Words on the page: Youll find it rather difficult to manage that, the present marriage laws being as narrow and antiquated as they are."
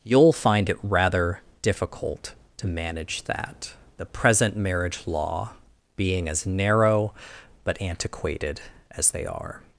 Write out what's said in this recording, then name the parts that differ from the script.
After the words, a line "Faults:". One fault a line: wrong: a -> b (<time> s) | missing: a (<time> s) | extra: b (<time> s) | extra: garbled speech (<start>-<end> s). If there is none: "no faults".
Youll find it rather difficult to manage that, the present marriage law being as narrow but antiquated as they are."
Faults:
wrong: laws -> law (5.1 s)
wrong: and -> but (7.6 s)